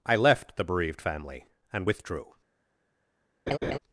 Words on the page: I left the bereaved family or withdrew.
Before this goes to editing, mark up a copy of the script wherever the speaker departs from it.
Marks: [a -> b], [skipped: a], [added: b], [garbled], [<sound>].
I left the bereaved family [or -> and] withdrew. [laugh]